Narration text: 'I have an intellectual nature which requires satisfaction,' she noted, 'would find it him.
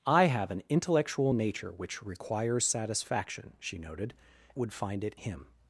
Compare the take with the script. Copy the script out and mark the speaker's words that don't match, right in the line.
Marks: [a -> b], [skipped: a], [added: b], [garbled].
'I have an intellectual nature which requires satisfaction,' she noted, 'would find it him.